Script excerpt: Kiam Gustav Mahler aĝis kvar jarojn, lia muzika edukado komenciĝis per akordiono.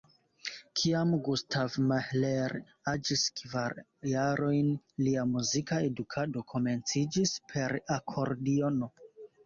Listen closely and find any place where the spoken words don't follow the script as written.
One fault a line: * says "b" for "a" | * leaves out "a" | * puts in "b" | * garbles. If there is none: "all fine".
all fine